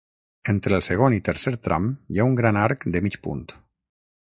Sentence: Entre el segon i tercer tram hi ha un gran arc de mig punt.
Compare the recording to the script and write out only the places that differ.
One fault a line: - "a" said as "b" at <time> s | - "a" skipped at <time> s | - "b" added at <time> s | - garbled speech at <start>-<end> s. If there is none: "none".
none